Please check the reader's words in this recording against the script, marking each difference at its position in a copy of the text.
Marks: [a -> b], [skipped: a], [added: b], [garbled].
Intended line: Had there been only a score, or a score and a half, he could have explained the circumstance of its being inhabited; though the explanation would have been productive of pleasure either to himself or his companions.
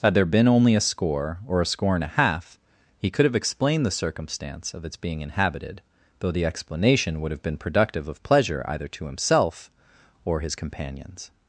Had there been only a score, or a score and a half, he could have explained the circumstance of its being inhabited; though the explanation would have been productive of pleasure either to himself or his companions.